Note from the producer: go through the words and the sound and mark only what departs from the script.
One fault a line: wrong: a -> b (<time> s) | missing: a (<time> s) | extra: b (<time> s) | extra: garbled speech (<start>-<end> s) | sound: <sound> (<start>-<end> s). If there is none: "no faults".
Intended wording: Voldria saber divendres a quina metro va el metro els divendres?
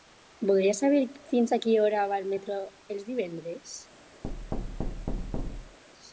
wrong: divendres -> fins (1.3 s)
wrong: metro -> hora (1.9 s)
sound: thud (4.2-5.8 s)